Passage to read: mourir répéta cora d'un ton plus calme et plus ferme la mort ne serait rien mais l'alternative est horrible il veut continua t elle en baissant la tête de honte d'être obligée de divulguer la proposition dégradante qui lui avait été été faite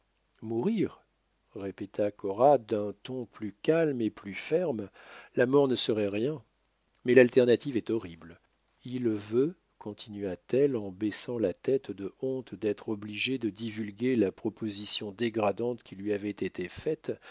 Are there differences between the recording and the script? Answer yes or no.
yes